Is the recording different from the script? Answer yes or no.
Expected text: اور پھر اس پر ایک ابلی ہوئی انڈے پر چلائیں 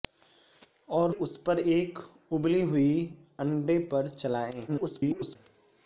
yes